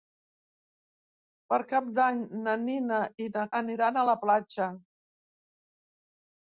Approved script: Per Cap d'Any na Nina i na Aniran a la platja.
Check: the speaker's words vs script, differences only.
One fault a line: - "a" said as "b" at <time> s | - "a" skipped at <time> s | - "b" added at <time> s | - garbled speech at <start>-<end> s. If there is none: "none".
none